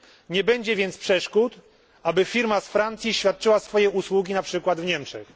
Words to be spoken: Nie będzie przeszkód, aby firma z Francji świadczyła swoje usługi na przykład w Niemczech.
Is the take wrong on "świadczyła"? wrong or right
right